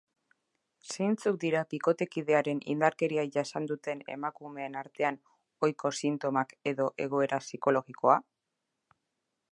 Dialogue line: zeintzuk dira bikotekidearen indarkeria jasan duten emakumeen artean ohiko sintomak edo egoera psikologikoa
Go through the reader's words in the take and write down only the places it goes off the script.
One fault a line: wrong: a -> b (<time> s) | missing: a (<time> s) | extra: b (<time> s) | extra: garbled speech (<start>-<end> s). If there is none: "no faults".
no faults